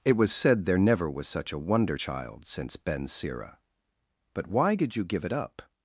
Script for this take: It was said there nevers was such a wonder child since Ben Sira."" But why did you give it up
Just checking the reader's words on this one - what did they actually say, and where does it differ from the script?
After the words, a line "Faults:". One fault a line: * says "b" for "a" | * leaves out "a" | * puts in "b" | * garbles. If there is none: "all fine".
It was said there never was such a wonder child since Ben Sira."" But why did you give it up
Faults:
* says "never" for "nevers"